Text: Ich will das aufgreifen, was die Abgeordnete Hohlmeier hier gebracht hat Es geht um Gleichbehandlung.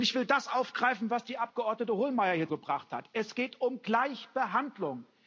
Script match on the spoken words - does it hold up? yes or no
yes